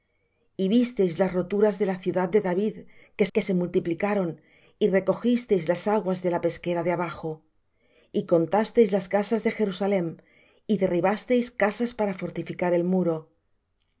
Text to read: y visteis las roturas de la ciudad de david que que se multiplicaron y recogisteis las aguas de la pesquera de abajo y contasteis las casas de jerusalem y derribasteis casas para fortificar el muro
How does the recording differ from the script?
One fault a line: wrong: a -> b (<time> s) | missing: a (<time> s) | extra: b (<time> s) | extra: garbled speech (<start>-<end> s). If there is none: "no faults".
no faults